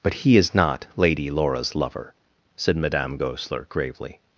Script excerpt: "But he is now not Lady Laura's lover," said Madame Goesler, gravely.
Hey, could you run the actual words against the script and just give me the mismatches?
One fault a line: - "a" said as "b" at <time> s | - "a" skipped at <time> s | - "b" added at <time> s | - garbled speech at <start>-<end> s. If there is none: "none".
- "now" skipped at 0.6 s